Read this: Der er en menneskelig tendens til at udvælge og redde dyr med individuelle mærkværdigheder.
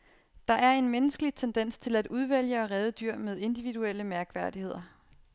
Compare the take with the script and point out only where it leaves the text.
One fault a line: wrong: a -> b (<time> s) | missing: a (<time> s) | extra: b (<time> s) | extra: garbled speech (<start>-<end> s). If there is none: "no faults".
no faults